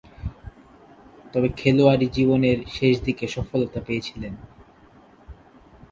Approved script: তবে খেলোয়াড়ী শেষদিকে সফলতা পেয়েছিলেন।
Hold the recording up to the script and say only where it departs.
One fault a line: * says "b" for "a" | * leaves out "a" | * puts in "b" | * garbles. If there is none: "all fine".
* puts in "জীবনের"